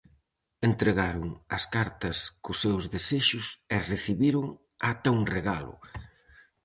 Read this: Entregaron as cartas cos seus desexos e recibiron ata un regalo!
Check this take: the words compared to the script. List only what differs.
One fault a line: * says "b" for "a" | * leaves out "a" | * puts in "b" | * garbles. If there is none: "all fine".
all fine